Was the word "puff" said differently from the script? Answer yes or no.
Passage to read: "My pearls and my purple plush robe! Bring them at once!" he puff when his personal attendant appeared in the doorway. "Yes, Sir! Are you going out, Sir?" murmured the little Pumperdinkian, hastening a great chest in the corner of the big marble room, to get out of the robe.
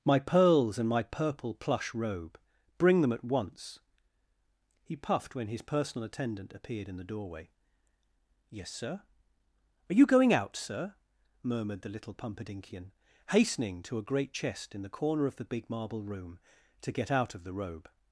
yes